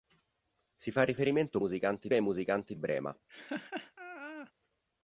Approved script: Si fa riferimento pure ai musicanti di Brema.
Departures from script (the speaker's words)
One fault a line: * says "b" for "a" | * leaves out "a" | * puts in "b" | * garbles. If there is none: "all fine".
* says "musicanti" for "pure"
* leaves out "di"